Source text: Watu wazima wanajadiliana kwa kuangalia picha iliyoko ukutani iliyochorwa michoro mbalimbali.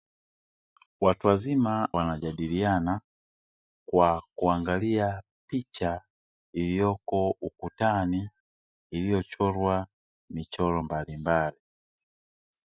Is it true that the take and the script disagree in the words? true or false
false